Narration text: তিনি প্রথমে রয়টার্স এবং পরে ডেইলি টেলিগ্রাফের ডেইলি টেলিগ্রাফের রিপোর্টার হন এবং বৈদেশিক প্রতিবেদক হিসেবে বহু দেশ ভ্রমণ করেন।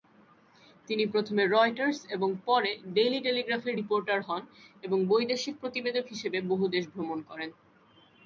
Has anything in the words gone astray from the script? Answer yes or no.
yes